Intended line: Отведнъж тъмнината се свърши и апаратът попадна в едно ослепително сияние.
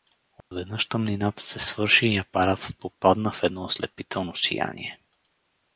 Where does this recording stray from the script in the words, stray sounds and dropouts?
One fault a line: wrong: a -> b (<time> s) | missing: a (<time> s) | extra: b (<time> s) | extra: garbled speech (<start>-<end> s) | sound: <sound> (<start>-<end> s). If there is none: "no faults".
sound: dropout (0.4-0.5 s)